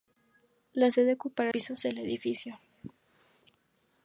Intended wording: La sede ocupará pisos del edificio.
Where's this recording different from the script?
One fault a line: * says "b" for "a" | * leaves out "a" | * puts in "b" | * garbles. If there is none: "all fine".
all fine